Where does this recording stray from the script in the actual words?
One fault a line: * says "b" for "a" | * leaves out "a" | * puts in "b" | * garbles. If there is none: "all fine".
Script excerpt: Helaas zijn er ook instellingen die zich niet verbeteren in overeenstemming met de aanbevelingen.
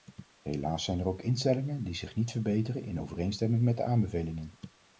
all fine